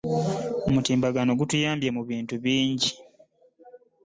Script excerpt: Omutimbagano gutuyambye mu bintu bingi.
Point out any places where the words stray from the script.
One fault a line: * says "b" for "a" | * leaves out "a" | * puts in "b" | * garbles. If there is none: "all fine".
all fine